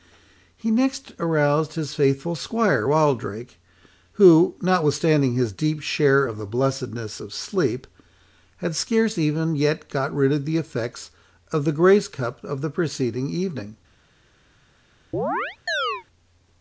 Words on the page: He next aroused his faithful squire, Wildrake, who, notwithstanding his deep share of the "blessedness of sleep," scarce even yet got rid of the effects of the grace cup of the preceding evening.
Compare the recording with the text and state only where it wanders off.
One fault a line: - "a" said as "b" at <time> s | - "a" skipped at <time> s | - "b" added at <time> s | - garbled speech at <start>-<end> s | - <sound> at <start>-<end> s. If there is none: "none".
- "had" added at 8.6 s
- chirp at 15.1-16.0 s